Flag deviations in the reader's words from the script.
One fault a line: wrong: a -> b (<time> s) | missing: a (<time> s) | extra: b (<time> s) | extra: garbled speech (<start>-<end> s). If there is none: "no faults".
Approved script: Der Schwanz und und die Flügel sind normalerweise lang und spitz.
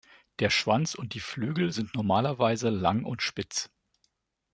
missing: und (1.1 s)